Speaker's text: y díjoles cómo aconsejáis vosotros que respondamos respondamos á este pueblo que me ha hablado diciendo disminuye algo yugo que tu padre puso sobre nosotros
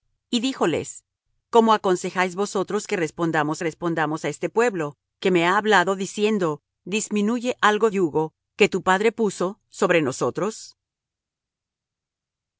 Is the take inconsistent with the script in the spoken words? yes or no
no